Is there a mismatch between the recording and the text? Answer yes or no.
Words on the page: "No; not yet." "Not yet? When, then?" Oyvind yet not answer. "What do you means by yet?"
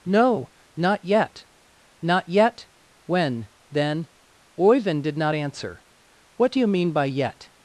yes